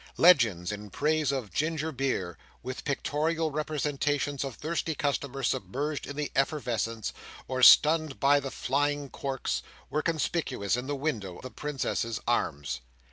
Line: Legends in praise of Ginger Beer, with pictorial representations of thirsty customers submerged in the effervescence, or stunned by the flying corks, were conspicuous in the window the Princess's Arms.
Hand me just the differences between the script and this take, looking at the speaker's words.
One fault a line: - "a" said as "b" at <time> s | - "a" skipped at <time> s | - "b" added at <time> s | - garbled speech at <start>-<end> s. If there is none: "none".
none